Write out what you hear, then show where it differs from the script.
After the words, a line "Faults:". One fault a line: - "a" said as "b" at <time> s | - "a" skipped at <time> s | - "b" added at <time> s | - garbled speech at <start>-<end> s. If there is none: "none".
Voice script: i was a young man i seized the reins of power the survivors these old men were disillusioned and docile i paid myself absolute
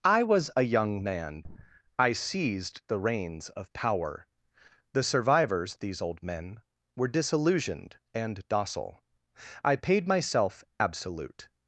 i was a young man i seized the reins of power the survivors these old men were disillusioned and docile i paid myself absolute
Faults:
none